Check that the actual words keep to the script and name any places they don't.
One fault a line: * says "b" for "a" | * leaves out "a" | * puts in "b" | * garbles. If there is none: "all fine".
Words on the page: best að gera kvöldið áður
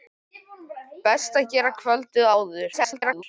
* garbles